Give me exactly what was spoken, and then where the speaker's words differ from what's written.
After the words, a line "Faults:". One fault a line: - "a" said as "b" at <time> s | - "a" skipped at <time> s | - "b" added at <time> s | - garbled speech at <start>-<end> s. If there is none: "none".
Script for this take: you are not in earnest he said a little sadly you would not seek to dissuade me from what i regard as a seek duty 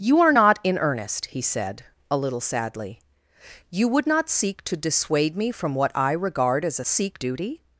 you are not in earnest he said a little sadly you would not seek to dissuade me from what i regard as a seek duty
Faults:
none